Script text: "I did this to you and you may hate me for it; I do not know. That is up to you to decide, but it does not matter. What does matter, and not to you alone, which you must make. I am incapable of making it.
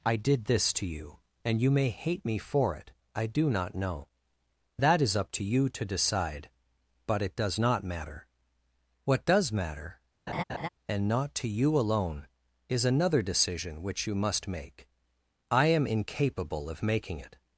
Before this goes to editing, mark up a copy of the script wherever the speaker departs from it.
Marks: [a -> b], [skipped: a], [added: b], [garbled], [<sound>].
"I did this to you and you may hate me for it; I do not know. That is up to you to decide, but it does not matter. What does matter, [laugh] and not to you alone, [added: is another decision] which you must make. I am incapable of making it.